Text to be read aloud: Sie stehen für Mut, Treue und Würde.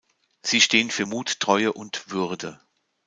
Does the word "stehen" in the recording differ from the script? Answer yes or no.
no